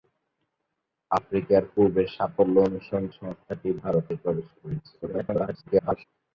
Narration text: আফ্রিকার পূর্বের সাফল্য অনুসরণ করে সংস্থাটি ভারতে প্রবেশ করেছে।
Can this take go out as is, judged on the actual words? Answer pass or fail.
fail